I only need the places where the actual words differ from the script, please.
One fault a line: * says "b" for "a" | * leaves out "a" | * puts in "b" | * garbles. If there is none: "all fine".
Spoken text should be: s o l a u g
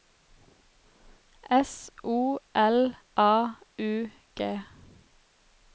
all fine